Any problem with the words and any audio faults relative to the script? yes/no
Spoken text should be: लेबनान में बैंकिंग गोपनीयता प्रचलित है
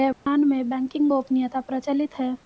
yes